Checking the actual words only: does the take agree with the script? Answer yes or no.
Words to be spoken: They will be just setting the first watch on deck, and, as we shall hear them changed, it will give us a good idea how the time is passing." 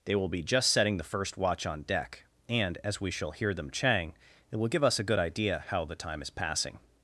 no